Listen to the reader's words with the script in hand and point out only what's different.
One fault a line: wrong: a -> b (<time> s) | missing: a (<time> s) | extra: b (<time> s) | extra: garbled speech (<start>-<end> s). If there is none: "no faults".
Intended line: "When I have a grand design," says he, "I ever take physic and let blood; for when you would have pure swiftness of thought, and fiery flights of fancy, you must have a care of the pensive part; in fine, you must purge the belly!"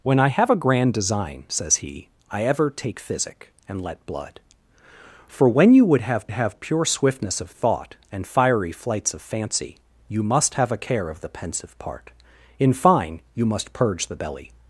extra: have (6.3 s)